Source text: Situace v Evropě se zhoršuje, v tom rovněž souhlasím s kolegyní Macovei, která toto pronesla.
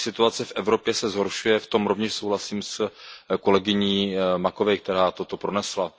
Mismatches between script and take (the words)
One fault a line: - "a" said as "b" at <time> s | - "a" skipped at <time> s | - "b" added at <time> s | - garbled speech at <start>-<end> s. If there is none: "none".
none